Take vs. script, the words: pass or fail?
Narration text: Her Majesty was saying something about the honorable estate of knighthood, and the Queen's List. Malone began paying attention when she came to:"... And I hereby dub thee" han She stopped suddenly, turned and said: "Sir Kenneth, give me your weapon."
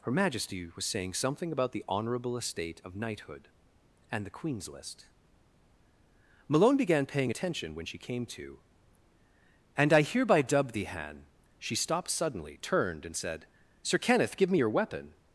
pass